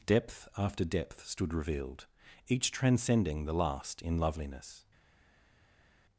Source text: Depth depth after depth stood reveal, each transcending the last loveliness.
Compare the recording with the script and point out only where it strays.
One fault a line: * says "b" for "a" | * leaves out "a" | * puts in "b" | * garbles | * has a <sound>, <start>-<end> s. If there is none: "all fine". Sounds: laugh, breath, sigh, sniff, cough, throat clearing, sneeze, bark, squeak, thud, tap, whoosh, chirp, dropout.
* leaves out "depth"
* says "revealed" for "reveal"
* puts in "in"